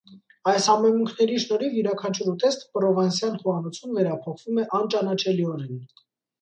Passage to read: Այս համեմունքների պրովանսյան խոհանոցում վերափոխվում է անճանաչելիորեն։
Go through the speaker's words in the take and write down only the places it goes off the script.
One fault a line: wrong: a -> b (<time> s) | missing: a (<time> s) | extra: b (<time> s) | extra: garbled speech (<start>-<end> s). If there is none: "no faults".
extra: շնորհիվ յուրաքանչյուր ուտեստ (1.4 s)